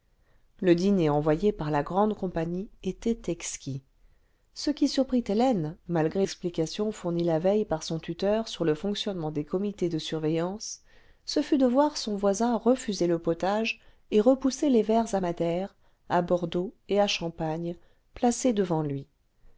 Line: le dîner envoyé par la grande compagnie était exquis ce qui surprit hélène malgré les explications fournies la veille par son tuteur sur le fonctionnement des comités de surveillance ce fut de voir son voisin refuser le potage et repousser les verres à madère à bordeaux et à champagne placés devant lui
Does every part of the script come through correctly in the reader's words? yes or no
no